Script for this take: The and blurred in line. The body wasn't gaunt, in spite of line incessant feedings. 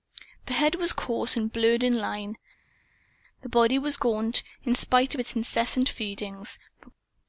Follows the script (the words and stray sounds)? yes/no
no